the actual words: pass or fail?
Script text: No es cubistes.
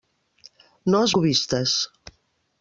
pass